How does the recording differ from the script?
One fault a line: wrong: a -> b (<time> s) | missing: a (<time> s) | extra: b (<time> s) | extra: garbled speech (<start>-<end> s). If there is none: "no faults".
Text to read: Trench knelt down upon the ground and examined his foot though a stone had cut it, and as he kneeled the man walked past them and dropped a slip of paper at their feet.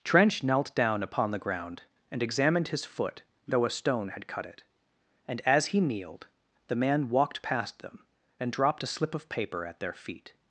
no faults